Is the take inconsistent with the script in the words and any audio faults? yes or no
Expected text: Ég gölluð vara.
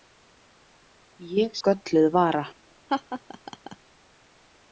yes